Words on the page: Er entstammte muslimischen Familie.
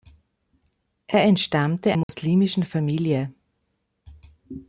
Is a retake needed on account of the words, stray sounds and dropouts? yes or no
yes